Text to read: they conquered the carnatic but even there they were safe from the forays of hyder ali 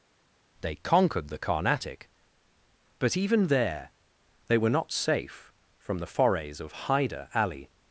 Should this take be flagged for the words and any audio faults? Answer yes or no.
yes